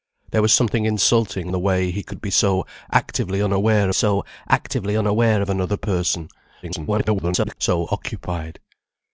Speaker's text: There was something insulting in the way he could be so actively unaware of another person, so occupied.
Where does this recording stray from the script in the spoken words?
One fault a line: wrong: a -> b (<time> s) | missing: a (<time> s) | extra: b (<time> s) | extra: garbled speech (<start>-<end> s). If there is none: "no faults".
missing: in (1.5 s)
extra: so actively unaware (3.9 s)
extra: garbled speech (6.6-7.6 s)